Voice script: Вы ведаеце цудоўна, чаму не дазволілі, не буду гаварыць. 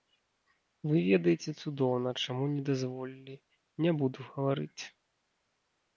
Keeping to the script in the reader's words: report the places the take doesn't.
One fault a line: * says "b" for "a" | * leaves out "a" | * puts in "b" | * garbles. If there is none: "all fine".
all fine